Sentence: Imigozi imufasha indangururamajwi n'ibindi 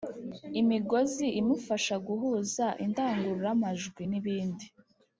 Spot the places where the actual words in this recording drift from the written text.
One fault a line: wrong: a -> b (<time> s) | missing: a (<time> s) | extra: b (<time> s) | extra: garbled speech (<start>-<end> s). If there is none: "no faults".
extra: guhuza (2.1 s)